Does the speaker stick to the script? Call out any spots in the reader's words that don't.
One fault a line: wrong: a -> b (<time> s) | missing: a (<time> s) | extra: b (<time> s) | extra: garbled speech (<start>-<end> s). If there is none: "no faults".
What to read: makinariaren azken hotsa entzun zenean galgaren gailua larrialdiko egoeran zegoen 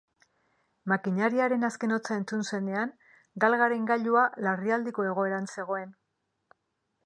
no faults